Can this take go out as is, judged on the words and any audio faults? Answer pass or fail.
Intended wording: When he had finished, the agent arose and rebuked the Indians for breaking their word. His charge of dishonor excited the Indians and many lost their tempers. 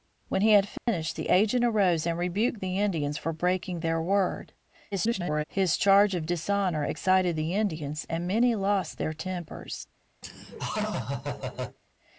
fail